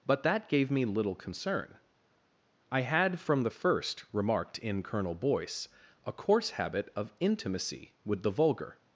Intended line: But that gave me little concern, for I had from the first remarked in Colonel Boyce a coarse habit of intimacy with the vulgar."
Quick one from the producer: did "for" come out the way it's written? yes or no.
no